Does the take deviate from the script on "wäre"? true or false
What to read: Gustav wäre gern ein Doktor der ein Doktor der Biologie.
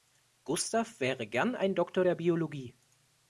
false